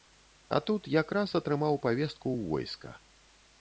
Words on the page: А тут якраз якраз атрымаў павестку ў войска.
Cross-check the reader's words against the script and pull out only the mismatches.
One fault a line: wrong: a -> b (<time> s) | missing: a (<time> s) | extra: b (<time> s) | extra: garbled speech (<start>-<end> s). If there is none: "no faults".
missing: якраз (1.4 s)